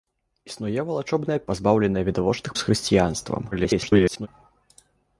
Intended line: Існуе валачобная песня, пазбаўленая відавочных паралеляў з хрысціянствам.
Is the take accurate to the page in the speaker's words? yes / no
no